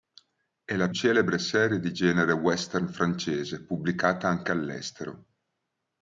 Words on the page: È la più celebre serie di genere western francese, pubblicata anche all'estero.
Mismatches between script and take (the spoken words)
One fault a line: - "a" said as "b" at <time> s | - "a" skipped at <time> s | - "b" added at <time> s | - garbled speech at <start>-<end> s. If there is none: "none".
- "più" skipped at 0.9 s